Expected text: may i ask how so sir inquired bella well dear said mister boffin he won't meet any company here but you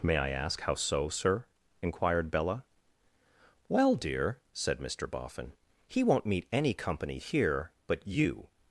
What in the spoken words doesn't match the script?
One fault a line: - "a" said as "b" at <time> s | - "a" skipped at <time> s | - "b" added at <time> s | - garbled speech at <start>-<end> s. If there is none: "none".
none